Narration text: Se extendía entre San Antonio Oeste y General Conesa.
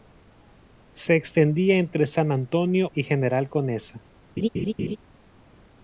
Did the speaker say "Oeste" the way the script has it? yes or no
no